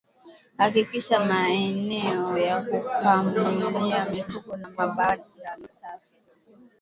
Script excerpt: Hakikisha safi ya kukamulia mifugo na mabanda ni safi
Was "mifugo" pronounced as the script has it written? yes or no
yes